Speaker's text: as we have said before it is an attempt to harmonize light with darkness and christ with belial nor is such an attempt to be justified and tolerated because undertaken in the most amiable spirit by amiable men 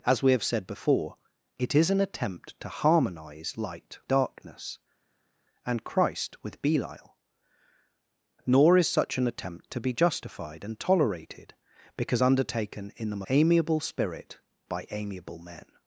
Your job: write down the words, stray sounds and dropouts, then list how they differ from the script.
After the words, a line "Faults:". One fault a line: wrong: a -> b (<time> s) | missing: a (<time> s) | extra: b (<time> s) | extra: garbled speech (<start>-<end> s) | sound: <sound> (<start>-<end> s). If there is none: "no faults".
as we have said before it is an attempt to harmonize light darkness and christ with belial nor is such an attempt to be justified and tolerated because undertaken in the amiable spirit by amiable men
Faults:
missing: with (4.0 s)
missing: most (13.2 s)